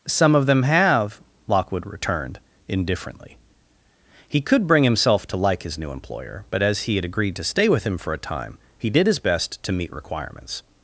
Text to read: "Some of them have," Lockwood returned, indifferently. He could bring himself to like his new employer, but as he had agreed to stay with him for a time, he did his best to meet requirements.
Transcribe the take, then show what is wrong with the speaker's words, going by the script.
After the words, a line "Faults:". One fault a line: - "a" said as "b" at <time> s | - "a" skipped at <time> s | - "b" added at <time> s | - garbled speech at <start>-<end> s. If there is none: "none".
"Some of them have," Lockwood returned, indifferently. He could bring himself to like his new employer, but as he had agreed to stay with him for a time, he did his best to meet requirements.
Faults:
none